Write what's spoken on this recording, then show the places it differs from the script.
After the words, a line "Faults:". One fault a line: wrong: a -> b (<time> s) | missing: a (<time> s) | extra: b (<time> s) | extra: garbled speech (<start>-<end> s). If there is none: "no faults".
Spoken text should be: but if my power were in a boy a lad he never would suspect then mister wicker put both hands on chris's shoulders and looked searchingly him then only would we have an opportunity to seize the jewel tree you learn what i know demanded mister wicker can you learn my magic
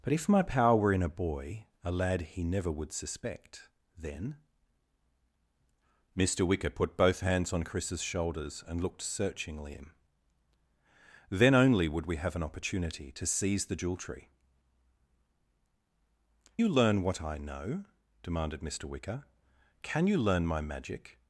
but if my power were in a boy a lad he never would suspect then mister wicker put both hands on chris's shoulders and looked searchingly him then only would we have an opportunity to seize the jewel tree you learn what i know demanded mister wicker can you learn my magic
Faults:
no faults